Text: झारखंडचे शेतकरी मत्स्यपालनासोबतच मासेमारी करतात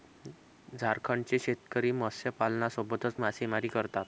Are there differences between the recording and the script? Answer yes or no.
no